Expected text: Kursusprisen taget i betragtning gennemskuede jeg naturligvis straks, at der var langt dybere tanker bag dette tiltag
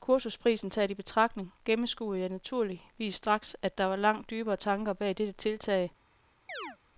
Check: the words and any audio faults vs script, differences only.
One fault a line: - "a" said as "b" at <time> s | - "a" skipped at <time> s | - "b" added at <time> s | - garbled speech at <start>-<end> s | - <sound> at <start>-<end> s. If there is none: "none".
- chirp at 6.5-6.8 s